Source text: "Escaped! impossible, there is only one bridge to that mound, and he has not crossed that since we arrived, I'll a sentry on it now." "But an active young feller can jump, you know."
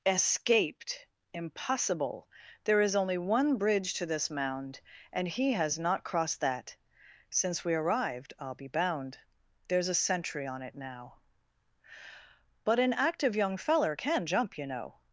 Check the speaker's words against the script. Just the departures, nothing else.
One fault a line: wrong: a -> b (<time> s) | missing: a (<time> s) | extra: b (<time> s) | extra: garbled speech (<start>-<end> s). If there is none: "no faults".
wrong: that -> this (4.1 s)
extra: be bound There's (8.6 s)